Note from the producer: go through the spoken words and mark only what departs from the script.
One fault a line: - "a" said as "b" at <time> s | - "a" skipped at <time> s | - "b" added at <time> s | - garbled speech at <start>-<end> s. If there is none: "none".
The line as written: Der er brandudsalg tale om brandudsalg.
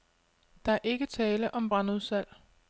- "brandudsalg" said as "ikke" at 0.8 s